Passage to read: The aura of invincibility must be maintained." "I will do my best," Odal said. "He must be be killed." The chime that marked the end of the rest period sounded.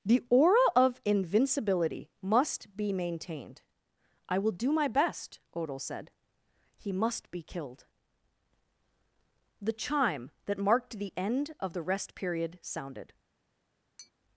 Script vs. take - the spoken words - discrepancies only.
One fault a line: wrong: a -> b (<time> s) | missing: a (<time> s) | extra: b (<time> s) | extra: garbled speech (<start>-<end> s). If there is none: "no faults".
missing: be (7.4 s)